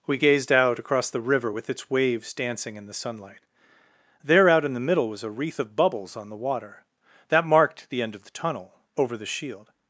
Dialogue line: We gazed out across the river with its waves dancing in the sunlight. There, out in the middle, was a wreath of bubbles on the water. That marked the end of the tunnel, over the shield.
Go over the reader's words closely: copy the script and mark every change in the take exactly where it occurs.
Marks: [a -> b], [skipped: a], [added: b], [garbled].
We gazed out across the river with its waves dancing in the sunlight. There, out in the middle, was a wreath of bubbles on the water. That marked the end of the tunnel, over the shield.